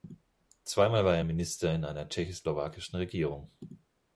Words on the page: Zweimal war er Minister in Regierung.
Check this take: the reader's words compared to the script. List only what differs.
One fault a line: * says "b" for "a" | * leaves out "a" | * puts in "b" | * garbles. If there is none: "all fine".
* puts in "einer tschechoslowakischen"